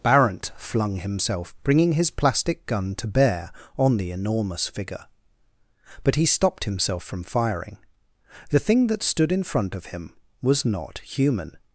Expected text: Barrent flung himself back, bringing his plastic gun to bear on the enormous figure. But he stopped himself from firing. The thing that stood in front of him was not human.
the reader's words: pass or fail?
fail